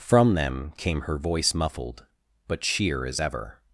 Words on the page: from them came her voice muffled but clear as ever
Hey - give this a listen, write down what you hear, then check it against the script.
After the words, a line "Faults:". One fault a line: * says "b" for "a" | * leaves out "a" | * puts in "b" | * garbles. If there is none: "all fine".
from them came her voice muffled but sheer as ever
Faults:
* says "sheer" for "clear"